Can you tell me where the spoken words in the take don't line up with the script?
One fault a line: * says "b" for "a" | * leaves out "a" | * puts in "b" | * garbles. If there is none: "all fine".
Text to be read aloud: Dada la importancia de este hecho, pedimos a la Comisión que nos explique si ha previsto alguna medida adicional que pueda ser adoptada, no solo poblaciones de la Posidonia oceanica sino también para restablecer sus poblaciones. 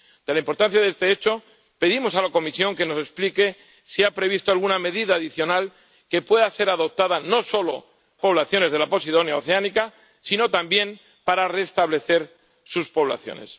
all fine